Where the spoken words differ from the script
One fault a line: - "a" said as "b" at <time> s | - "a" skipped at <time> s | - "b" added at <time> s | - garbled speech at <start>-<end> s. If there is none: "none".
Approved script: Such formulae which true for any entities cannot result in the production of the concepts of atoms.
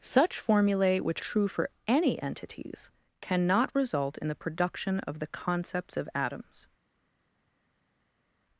none